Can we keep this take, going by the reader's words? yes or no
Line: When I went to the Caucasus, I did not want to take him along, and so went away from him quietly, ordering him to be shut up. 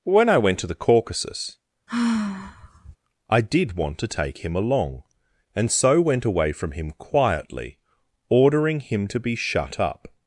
no